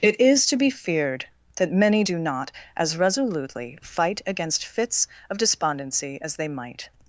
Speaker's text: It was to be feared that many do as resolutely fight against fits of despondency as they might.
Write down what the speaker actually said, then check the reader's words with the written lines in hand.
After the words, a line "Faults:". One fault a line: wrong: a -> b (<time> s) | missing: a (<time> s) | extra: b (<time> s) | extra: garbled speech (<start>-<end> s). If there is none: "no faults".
It is to be feared that many do not as resolutely fight against fits of despondency as they might.
Faults:
wrong: was -> is (0.2 s)
extra: not (2.2 s)